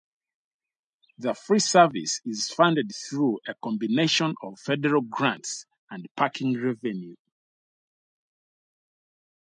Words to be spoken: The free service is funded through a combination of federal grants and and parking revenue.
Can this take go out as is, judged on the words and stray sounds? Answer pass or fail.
fail